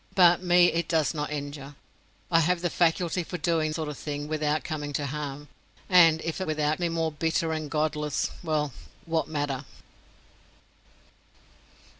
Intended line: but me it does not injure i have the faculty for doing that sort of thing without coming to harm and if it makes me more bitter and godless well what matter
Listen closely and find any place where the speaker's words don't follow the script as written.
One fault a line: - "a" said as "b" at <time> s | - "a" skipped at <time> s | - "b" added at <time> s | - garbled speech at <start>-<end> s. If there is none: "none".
- "that" skipped at 3.7 s
- "makes" said as "without" at 6.4 s